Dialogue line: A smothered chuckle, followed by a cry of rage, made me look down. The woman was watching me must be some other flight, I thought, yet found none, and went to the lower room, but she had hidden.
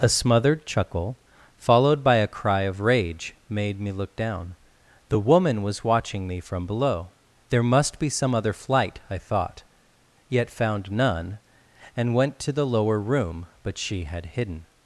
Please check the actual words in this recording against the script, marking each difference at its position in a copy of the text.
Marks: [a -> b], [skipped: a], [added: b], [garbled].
A smothered chuckle, followed by a cry of rage, made me look down. The woman was watching me [added: from below There] must be some other flight, I thought, yet found none, and went to the lower room, but she had hidden.